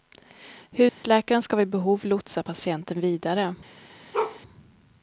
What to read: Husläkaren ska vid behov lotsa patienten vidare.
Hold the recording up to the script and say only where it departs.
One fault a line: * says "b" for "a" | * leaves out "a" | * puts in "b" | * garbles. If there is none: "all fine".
all fine